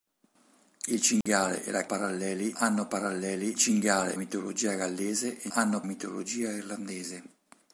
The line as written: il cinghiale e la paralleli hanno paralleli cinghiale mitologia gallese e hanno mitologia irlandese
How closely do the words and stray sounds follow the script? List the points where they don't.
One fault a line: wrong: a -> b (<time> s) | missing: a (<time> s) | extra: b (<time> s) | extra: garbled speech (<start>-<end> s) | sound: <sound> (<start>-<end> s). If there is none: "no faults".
sound: dropout (1.2-1.3 s)